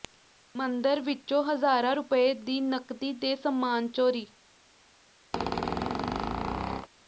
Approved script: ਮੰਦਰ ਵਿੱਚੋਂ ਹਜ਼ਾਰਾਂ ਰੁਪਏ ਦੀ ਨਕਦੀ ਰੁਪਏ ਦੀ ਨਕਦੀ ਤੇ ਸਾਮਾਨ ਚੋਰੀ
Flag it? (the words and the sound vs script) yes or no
yes